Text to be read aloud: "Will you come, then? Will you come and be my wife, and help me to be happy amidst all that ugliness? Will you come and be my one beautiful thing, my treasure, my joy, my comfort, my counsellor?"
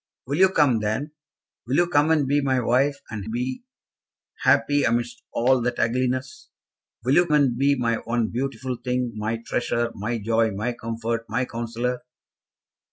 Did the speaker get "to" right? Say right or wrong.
wrong